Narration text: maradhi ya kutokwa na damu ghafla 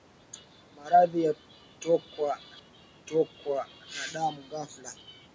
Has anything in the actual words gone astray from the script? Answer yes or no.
yes